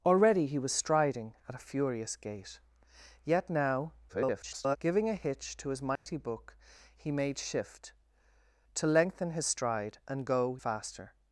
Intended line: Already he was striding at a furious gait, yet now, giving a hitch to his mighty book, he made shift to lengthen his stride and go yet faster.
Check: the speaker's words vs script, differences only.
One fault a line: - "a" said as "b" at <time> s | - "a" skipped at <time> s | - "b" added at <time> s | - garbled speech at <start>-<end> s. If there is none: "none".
- garbled speech at 4.1-4.8 s
- "yet" skipped at 10.6 s